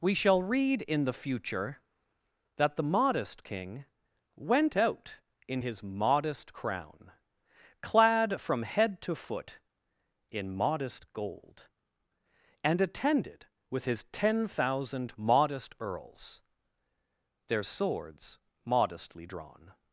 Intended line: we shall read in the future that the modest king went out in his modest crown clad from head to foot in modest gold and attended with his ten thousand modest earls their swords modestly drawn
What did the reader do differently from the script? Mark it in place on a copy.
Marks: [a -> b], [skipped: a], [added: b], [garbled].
we shall read in the future that the modest king went out in his modest crown clad from head to foot in modest gold and attended with his ten thousand modest earls their swords modestly drawn